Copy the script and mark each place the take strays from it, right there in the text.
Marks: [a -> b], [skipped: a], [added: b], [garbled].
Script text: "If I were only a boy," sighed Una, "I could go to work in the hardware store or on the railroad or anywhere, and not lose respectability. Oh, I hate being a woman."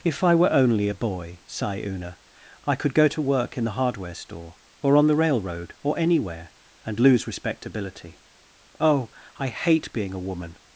"If I were only a boy," [sighed -> sigh] Una, "I could go to work in the hardware store or on the railroad or anywhere, and [skipped: not] lose respectability. Oh, I hate being a woman."